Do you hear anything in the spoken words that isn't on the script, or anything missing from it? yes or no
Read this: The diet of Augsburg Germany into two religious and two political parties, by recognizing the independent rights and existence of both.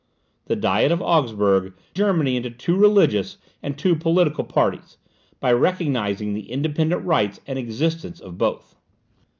no